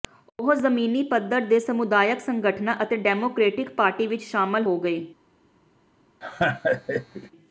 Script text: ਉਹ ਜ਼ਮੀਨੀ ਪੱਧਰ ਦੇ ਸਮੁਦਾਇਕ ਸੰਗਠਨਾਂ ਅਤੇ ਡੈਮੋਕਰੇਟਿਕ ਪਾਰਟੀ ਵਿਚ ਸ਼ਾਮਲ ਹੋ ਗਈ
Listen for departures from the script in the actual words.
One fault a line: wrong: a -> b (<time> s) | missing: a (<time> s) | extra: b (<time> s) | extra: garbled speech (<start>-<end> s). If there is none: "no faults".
no faults